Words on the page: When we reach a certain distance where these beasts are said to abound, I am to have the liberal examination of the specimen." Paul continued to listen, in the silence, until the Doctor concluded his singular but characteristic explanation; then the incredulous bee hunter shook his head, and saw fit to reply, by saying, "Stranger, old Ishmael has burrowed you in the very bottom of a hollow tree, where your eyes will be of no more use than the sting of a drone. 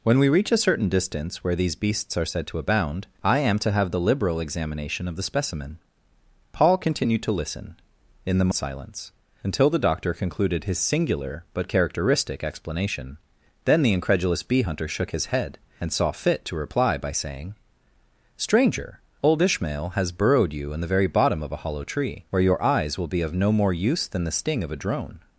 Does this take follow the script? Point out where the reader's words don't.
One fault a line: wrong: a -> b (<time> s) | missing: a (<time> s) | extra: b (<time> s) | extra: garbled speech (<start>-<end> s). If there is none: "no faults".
no faults